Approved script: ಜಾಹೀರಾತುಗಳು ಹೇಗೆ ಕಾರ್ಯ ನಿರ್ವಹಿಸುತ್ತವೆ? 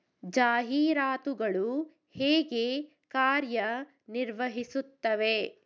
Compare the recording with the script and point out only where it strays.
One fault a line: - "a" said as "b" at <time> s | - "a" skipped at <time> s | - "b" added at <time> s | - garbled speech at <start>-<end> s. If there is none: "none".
none